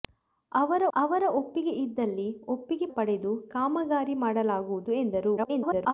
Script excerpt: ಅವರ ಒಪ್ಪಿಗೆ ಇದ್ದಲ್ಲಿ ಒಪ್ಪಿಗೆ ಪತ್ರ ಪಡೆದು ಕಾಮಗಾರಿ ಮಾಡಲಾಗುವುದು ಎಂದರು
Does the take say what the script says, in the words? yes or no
no